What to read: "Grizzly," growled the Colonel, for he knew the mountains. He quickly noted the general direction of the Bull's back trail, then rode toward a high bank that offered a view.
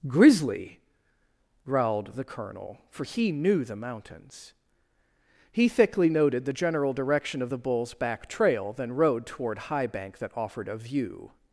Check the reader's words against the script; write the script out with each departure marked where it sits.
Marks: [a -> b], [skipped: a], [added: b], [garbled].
"Grizzly," growled the Colonel, for he knew the mountains. He [quickly -> thickly] noted the general direction of the Bull's back trail, then rode toward [skipped: a] high bank that offered a view.